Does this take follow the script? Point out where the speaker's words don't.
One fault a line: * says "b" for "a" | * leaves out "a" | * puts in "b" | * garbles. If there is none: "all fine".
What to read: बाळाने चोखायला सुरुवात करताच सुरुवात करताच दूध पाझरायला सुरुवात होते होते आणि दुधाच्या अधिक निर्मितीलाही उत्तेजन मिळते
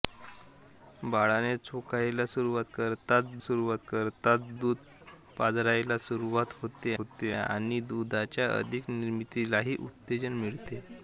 all fine